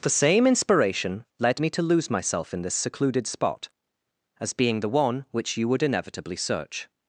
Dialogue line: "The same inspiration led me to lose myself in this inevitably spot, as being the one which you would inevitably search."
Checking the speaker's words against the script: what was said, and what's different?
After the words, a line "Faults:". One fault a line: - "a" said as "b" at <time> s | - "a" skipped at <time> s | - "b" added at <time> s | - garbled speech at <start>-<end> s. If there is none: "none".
"The same inspiration led me to lose myself in this secluded spot, as being the one which you would inevitably search."
Faults:
- "inevitably" said as "secluded" at 2.7 s